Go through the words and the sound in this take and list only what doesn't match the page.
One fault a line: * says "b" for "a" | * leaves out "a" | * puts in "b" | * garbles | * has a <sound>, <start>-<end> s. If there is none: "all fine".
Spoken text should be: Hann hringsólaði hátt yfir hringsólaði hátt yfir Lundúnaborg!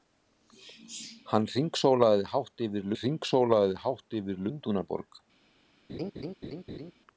* has a laugh, 5.9-6.9 s